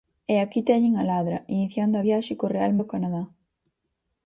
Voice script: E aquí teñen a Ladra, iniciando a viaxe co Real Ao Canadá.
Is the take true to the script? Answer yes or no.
yes